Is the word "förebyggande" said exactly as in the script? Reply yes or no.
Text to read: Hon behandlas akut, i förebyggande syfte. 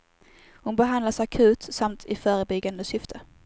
yes